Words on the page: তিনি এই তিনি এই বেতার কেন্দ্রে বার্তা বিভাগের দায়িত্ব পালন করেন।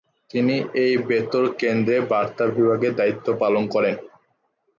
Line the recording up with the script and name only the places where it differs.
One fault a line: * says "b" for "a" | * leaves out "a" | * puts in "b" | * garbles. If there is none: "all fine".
* leaves out "তিনি এই"